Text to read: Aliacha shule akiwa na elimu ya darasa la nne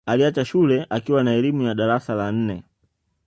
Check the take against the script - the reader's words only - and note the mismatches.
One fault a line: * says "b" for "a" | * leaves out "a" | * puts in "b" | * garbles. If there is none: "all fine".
all fine